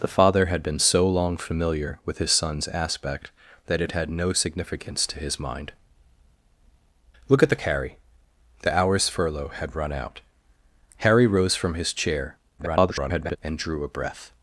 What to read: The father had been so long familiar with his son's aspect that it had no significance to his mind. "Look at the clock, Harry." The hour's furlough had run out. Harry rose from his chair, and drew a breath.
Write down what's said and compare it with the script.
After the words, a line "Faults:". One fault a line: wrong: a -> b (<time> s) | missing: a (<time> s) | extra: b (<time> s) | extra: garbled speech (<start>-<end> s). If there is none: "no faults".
The father had been so long familiar with his son's aspect that it had no significance to his mind. "Look at the Harry." The hour's furlough had run out. Harry rose from his chair, [garbled] and drew a breath.
Faults:
missing: clock (7.6 s)
extra: garbled speech (12.6-13.4 s)